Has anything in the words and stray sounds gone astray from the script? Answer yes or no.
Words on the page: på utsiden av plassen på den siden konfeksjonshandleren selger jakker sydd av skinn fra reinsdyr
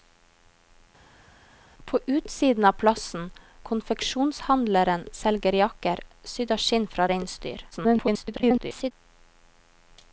yes